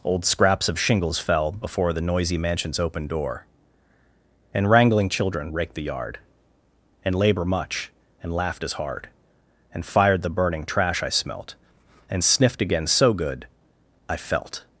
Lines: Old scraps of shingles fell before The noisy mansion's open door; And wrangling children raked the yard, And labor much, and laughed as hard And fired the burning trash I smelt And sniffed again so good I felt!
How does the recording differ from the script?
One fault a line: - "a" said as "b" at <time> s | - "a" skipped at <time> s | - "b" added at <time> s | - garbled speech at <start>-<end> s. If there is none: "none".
none